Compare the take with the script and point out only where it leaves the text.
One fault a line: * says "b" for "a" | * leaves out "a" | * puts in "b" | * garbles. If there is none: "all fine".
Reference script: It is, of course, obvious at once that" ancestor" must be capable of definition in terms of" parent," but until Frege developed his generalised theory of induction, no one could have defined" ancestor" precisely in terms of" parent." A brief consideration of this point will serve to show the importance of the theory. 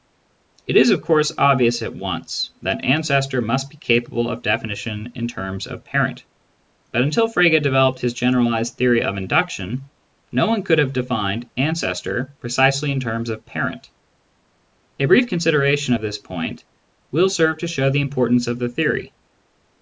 all fine